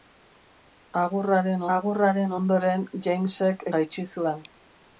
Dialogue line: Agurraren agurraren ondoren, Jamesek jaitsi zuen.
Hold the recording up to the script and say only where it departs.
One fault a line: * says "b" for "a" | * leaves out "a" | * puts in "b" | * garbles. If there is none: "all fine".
all fine